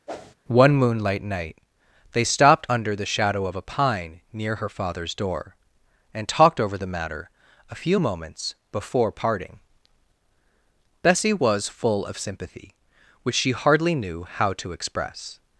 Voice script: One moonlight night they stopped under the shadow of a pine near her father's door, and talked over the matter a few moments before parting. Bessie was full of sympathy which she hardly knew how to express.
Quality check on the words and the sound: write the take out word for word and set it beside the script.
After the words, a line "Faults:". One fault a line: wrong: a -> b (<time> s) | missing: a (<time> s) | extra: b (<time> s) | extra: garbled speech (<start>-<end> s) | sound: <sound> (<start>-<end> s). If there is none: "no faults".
One moonlight night they stopped under the shadow of a pine near her father's door, and talked over the matter a few moments before parting. Bessie was full of sympathy which she hardly knew how to express.
Faults:
sound: whoosh (0.1-0.3 s)